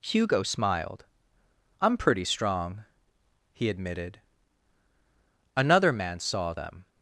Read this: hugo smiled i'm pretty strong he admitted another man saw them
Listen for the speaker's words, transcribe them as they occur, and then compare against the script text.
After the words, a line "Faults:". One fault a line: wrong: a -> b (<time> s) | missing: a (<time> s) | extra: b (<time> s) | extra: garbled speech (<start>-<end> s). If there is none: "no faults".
hugo smiled i'm pretty strong he admitted another man saw them
Faults:
no faults